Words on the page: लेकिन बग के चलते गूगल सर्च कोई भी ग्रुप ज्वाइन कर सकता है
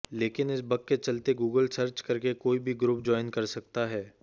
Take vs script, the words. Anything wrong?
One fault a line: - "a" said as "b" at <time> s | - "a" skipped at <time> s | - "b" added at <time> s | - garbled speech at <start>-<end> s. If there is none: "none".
- "इस" added at 0.5 s
- "करके" added at 2.0 s